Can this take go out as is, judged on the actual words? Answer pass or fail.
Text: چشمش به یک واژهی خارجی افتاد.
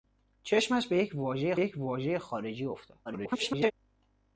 fail